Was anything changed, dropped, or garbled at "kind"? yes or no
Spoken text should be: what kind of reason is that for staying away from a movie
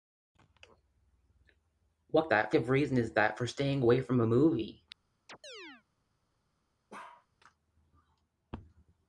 yes